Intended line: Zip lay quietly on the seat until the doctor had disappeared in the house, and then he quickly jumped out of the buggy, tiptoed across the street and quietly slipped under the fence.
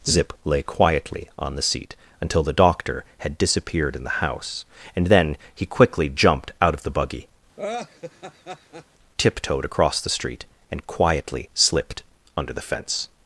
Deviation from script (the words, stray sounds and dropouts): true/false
true